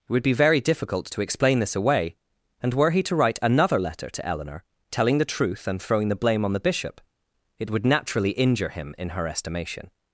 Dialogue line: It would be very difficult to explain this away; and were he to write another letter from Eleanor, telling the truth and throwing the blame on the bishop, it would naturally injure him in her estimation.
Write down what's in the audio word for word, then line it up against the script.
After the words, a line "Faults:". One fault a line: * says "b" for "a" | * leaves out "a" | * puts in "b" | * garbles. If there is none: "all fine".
It would be very difficult to explain this away; and were he to write another letter to Eleanor, telling the truth and throwing the blame on the bishop, it would naturally injure him in her estimation.
Faults:
* says "to" for "from"